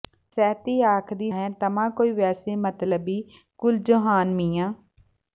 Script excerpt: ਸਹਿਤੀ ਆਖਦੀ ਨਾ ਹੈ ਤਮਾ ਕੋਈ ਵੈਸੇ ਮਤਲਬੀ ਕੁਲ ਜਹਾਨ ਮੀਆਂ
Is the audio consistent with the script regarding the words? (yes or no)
no